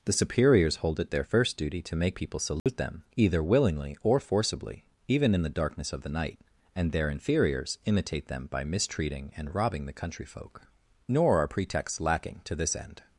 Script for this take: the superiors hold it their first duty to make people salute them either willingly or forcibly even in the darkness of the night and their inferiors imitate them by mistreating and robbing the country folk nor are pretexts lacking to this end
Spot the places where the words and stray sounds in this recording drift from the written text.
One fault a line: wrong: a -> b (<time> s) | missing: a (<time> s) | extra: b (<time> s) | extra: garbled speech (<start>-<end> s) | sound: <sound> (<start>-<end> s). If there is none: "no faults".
sound: dropout (2.6-2.7 s)